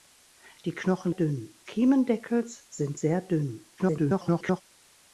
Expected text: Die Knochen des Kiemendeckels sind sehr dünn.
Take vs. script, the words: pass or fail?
fail